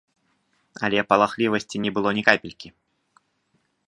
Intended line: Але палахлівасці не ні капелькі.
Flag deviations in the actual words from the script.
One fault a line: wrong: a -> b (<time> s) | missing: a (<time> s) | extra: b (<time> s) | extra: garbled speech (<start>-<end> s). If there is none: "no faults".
extra: было (2.0 s)